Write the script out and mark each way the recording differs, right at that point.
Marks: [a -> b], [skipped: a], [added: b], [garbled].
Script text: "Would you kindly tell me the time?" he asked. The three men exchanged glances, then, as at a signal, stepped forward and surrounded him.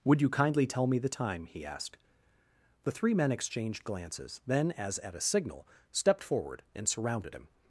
"Would you kindly tell me the time?" he asked. The three men exchanged glances, then, as at a signal, stepped forward and surrounded him.